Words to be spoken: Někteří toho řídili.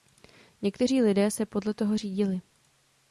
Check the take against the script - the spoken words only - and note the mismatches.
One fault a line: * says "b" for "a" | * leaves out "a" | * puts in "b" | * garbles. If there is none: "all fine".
* puts in "lidé se podle"